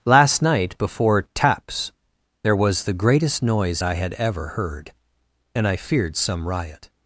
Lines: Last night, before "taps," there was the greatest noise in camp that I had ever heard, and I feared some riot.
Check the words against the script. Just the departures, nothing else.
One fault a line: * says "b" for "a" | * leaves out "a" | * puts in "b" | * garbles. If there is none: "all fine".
* leaves out "in camp that"